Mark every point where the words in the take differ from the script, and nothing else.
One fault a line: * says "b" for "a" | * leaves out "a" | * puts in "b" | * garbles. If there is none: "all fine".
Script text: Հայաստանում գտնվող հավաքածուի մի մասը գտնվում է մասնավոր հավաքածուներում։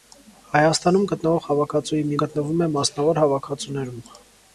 * leaves out "մասը"